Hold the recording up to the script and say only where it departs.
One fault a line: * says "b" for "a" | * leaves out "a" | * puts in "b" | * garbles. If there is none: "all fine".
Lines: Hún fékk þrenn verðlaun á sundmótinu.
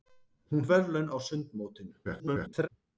* leaves out "fékk þrenn"
* garbles